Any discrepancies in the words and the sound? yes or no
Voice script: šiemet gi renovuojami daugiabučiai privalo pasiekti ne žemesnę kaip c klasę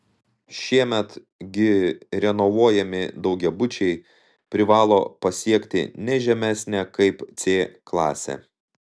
no